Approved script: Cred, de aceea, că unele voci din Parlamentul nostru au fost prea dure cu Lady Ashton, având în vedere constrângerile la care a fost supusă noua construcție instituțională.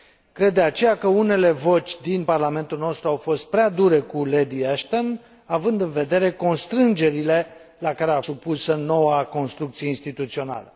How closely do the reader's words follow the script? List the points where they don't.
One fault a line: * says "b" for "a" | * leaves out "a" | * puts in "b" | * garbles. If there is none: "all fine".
* leaves out "fost"